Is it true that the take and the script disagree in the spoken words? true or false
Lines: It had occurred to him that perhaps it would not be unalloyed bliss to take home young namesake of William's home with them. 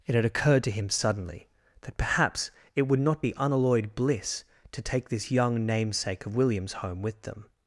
true